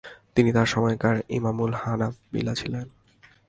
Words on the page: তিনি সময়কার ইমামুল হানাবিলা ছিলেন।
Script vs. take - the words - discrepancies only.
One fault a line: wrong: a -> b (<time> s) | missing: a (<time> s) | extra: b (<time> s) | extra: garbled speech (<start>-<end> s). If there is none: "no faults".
extra: তার (0.5 s)